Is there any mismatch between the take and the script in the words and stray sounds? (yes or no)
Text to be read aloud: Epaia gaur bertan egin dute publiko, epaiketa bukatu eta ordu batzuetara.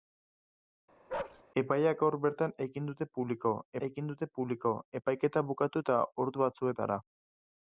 yes